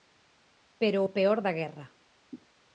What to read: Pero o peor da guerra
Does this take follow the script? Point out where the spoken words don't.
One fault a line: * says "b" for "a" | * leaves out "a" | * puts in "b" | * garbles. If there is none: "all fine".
all fine